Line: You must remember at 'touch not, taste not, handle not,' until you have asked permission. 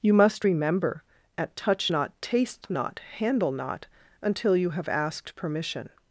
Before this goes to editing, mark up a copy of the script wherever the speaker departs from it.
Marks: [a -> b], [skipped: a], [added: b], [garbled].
You must remember at 'touch not, taste not, handle not,' until you have asked permission.